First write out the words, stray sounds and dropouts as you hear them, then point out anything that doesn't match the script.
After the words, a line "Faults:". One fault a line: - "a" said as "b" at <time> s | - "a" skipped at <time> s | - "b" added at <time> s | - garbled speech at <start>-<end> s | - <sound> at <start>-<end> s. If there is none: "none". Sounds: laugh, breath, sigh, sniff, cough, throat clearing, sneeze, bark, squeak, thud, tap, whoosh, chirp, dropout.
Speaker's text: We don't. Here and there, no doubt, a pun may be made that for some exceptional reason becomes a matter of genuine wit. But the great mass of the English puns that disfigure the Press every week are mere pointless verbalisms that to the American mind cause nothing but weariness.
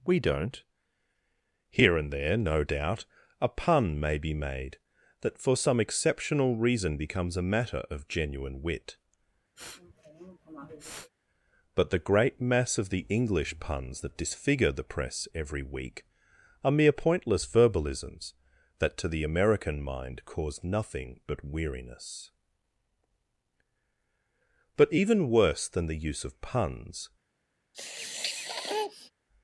We don't. Here and there, no doubt, a pun may be made that for some exceptional reason becomes a matter of genuine wit. But the great mass of the English puns that disfigure the Press every week are mere pointless verbalisms that to the American mind cause nothing but weariness. But even worse than the use of puns
Faults:
- sniff at 9.6-11.1 s
- "But even worse than the use of puns" added at 24.8 s
- sniff at 27.7-29.1 s